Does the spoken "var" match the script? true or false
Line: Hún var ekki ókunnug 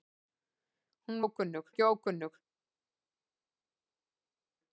false